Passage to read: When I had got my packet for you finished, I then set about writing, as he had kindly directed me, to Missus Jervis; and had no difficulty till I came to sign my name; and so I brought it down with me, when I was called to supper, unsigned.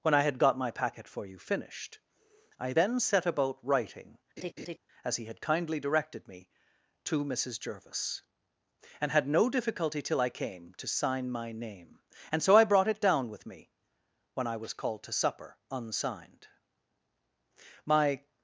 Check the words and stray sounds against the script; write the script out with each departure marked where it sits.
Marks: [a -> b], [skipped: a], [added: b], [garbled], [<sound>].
When I had got my packet for you finished, I then set about writing, [laugh] as he had kindly directed me, to Missus Jervis; and had no difficulty till I came to sign my name; and so I brought it down with me, when I was called to supper, unsigned. [added: My]